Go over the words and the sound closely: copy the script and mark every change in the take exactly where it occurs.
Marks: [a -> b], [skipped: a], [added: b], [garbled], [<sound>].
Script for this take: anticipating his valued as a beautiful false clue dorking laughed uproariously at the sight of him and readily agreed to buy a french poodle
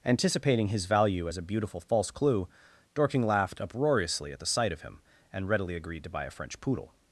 anticipating his [valued -> value] as a beautiful false clue dorking laughed uproariously at the sight of him and readily agreed to buy a french poodle